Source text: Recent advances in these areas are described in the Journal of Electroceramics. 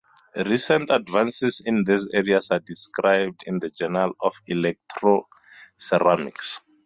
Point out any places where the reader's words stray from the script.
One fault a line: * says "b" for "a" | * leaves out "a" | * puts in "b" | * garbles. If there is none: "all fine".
all fine